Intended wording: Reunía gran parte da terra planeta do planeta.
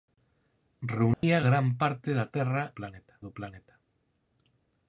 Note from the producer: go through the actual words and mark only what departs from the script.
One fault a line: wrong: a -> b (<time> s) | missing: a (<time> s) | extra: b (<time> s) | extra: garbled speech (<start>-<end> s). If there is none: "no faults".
no faults